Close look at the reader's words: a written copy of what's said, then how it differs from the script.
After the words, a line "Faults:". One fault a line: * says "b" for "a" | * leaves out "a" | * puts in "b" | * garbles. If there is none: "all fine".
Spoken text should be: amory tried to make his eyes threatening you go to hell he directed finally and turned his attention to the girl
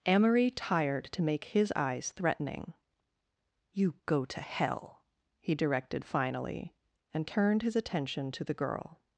amory tired to make his eyes threatening you go to hell he directed finally and turned his attention to the girl
Faults:
* says "tired" for "tried"